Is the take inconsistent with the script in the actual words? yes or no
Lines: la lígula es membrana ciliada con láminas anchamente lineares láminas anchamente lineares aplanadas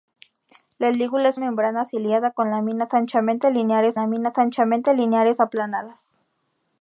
no